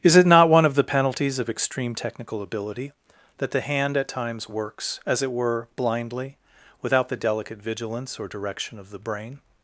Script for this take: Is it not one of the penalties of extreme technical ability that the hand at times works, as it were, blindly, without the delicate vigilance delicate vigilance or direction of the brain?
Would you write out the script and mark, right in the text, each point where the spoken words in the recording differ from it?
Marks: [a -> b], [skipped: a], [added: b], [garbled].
Is it not one of the penalties of extreme technical ability that the hand at times works, as it were, blindly, without the delicate vigilance [skipped: delicate vigilance] or direction of the brain?